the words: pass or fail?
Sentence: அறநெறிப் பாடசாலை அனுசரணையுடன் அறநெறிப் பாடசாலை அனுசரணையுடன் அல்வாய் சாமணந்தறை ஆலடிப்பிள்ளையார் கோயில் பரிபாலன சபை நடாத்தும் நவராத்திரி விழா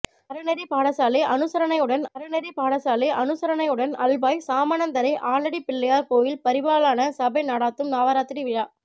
pass